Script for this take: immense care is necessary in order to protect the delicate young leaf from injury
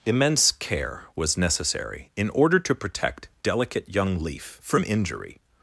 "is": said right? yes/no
no